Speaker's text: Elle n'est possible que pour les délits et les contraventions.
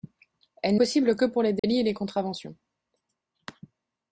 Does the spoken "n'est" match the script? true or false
false